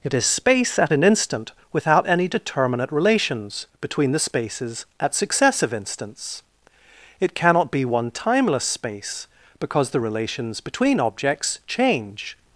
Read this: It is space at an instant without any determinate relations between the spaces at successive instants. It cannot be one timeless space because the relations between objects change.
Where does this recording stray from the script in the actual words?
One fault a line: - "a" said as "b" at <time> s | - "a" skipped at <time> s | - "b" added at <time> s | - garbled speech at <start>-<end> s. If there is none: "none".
none